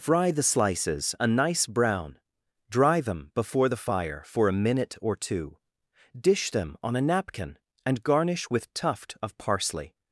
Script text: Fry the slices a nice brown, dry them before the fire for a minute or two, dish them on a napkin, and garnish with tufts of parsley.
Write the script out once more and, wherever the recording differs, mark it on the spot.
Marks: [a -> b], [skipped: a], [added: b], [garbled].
Fry the slices a nice brown, dry them before the fire for a minute or two, dish them on a napkin, and garnish with [tufts -> tuft] of parsley.